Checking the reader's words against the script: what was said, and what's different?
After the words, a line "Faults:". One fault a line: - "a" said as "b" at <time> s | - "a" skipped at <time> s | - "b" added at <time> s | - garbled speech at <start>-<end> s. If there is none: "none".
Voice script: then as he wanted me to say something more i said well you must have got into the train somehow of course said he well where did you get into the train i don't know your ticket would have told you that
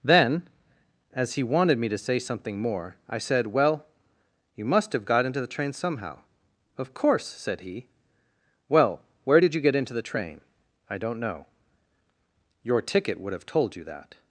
then as he wanted me to say something more i said well you must have got into the train somehow of course said he well where did you get into the train i don't know your ticket would have told you that
Faults:
none